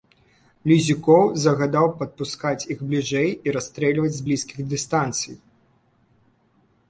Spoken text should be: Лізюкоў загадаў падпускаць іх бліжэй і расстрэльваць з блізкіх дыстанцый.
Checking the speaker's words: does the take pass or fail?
pass